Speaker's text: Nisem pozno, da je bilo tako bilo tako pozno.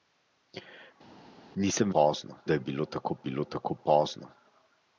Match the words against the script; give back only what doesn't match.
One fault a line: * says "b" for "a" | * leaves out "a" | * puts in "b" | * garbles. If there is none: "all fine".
all fine